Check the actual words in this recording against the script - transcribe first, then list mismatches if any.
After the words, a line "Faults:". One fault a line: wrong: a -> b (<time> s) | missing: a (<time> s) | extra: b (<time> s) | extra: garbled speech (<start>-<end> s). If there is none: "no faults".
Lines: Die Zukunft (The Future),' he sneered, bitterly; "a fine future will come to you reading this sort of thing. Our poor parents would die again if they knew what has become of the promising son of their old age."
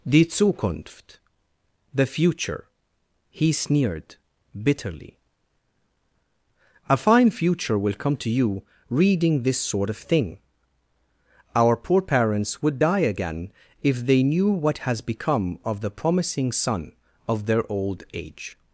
Die Zukunft (The Future),' he sneered, bitterly; "a fine future will come to you reading this sort of thing. Our poor parents would die again if they knew what has become of the promising son of their old age."
Faults:
no faults